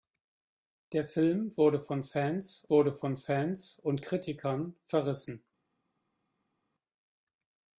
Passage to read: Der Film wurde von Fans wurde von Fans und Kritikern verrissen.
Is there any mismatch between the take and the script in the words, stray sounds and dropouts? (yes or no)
no